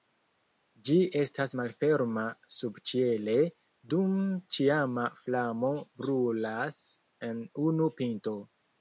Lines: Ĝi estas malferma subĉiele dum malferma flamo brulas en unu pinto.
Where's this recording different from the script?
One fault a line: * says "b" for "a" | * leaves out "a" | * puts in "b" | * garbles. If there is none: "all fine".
* says "ĉiama" for "malferma"